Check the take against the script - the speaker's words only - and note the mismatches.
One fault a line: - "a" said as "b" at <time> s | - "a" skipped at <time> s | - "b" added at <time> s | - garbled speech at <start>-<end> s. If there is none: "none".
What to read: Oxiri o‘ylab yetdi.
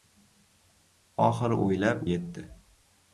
none